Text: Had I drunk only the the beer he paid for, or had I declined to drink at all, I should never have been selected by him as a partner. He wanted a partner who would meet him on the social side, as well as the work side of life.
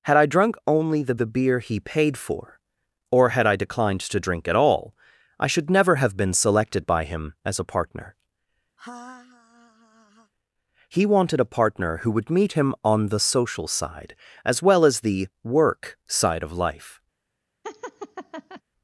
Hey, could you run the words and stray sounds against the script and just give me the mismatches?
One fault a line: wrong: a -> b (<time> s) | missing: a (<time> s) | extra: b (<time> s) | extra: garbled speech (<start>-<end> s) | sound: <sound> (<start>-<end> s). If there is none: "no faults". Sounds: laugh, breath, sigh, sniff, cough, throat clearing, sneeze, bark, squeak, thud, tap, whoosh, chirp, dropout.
sound: laugh (8.8-10.3 s)
sound: laugh (17.6-18.6 s)